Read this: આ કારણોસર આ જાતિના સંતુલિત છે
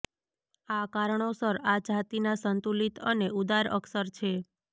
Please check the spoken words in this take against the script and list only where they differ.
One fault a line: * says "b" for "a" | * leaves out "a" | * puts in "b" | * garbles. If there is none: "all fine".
* puts in "અને ઉદાર અક્ષર"